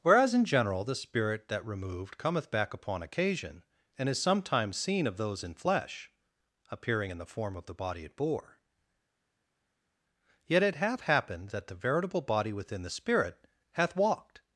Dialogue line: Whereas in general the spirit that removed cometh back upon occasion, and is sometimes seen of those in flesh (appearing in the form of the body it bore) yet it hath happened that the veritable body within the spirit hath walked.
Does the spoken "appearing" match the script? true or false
true